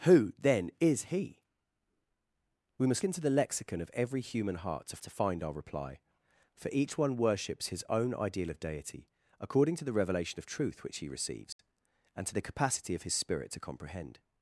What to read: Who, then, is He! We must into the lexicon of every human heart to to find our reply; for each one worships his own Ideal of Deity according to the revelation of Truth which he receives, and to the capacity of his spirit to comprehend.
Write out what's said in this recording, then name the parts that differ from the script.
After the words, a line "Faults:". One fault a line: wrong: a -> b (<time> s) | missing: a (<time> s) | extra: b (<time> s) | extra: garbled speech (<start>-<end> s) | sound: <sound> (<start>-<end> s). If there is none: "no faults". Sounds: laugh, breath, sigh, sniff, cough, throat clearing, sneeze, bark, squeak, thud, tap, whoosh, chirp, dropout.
Who, then, is He! We must into the lexicon of every human heart to to find our reply; for each one worships his own Ideal of Deity according to the revelation of Truth which he receives, and to the capacity of his spirit to comprehend.
Faults:
sound: dropout (11.5-11.6 s)